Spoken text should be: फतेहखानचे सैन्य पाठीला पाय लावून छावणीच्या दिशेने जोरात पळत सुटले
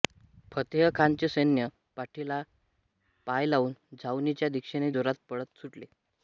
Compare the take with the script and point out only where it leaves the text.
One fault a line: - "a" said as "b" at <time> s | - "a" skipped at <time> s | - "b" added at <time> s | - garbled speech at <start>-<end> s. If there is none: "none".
none